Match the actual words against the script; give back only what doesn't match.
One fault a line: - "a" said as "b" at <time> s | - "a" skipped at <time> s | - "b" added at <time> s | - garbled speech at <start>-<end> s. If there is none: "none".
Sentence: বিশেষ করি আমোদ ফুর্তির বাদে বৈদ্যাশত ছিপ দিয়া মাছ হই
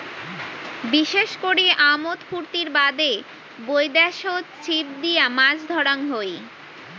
- "ধরাং" added at 5.7 s